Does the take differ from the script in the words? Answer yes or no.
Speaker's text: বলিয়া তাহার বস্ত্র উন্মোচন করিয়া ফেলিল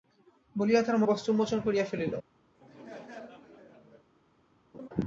no